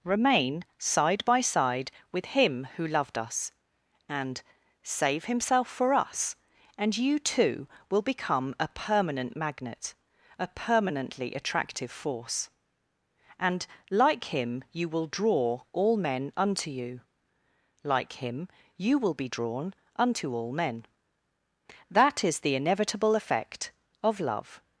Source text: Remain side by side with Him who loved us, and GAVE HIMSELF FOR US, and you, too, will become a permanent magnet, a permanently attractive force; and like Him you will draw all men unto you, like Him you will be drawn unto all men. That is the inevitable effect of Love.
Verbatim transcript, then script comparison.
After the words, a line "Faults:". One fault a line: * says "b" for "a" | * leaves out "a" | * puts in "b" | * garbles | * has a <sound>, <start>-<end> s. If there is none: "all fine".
Remain side by side with Him who loved us, and Save HIMSELF FOR US, and you, too, will become a permanent magnet, a permanently attractive force; and like Him you will draw all men unto you, like Him you will be drawn unto all men. That is the inevitable effect of Love.
Faults:
* says "Save" for "GAVE"